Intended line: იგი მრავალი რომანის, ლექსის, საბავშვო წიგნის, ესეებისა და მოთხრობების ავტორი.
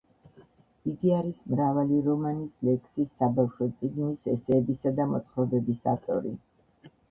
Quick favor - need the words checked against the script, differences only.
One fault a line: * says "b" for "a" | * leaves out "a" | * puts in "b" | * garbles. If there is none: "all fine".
* puts in "არის"